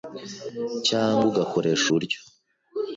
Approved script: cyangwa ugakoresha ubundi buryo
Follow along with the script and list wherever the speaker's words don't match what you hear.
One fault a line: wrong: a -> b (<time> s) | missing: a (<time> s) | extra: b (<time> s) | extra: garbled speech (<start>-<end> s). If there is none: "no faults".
missing: ubundi (1.9 s)